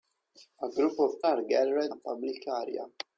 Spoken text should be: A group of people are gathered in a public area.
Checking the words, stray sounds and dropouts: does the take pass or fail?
fail